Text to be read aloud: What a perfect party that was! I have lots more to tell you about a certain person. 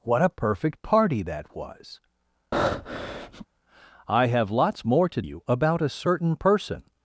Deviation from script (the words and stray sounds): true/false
true